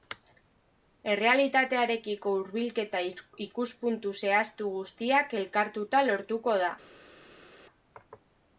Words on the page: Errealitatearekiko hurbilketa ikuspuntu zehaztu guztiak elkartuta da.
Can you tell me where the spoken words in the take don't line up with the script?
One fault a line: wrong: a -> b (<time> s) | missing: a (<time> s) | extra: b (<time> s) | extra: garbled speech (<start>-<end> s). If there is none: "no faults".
extra: lortuko (6.1 s)